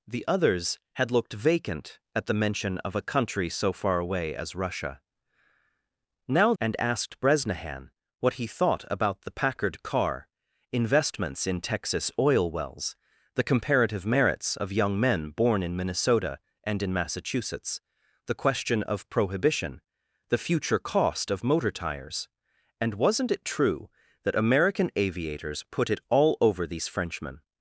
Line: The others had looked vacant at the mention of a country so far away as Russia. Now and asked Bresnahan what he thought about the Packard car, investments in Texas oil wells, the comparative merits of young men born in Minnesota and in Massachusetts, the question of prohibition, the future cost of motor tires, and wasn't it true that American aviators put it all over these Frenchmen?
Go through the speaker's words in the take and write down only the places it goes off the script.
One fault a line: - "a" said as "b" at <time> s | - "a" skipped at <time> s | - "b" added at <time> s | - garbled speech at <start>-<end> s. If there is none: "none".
none